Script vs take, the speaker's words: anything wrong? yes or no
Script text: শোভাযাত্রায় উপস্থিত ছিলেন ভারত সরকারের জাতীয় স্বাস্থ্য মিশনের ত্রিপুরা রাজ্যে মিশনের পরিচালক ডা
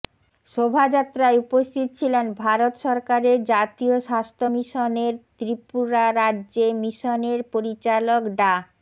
no